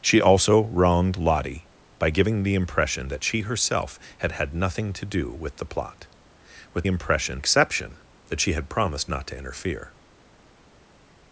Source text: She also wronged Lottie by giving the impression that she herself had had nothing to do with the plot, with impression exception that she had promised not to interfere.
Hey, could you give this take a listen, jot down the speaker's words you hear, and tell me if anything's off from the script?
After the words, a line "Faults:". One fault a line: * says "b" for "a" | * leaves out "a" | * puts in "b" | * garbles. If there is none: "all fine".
She also wronged Lottie by giving the impression that she herself had had nothing to do with the plot, with impression exception that she had promised not to interfere.
Faults:
all fine